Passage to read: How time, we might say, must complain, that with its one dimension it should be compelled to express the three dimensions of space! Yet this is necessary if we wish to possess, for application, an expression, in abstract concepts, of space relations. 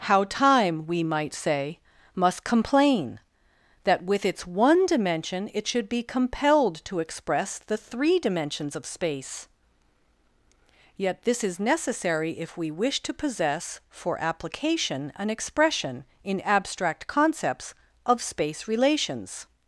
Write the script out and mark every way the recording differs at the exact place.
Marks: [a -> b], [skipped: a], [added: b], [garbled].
How time, we might say, must complain, that with its one dimension it should be compelled to express the three dimensions of space! Yet this is necessary if we wish to possess, for application, an expression, in abstract concepts, of space relations.